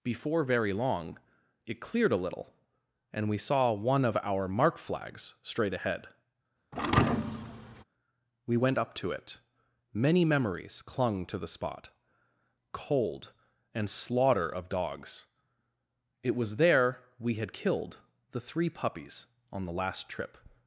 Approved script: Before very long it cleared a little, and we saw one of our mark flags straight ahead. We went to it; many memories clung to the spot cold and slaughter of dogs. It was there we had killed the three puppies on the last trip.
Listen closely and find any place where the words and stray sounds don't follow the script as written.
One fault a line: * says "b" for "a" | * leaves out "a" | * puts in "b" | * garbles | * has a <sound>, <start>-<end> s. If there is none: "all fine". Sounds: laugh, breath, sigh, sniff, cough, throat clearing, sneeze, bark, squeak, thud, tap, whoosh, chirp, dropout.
* has a thud, 6.7-7.8 s
* puts in "up"